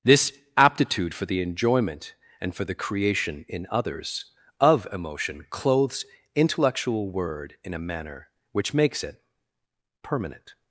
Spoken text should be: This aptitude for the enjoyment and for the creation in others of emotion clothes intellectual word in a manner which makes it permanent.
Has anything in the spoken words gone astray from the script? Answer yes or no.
no